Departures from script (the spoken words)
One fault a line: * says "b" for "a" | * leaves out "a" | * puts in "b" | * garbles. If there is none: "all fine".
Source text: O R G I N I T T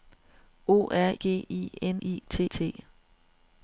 all fine